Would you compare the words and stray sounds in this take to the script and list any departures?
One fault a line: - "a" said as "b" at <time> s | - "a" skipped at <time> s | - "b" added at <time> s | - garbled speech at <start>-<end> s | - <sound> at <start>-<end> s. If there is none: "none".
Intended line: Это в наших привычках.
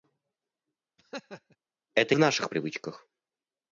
- laugh at 1.0-1.6 s